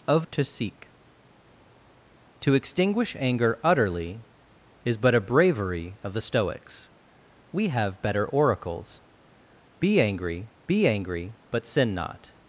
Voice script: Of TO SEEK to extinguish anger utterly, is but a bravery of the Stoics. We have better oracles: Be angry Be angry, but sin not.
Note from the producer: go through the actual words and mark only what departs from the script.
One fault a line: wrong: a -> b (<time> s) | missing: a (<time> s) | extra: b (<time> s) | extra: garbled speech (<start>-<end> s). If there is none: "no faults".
no faults